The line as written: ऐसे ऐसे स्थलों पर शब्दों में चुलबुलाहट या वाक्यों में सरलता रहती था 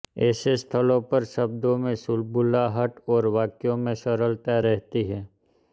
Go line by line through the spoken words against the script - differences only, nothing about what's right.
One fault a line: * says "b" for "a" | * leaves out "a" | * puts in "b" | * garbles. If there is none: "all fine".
* leaves out "ऐसे"
* says "और" for "या"
* says "है" for "था"